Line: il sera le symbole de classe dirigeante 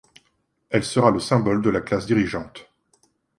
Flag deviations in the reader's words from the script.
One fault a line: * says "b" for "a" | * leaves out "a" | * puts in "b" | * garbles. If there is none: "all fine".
* says "elle" for "il"
* puts in "la"